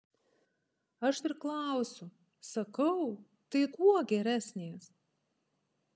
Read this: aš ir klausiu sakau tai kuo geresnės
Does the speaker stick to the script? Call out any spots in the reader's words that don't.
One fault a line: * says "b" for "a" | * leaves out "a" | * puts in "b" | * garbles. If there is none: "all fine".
all fine